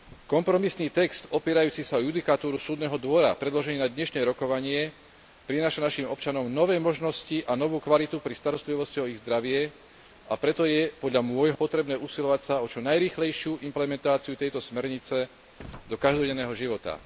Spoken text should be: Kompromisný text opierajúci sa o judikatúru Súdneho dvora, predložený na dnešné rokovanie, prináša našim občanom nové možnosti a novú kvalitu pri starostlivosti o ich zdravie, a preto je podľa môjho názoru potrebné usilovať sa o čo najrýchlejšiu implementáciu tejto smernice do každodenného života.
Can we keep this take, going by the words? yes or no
no